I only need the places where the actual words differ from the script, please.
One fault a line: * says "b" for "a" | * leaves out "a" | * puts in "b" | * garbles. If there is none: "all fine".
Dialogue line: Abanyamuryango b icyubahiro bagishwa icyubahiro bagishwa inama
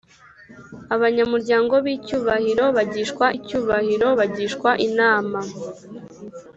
all fine